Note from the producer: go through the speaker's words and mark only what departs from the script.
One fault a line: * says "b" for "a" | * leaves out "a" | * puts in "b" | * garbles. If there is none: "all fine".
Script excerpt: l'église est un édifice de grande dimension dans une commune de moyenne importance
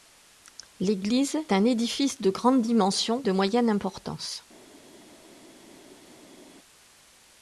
* leaves out "est"
* leaves out "dans une commune"